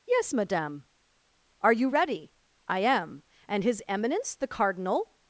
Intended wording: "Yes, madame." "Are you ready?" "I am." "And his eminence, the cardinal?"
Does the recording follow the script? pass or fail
pass